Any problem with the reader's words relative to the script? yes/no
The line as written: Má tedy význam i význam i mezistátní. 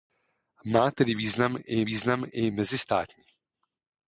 no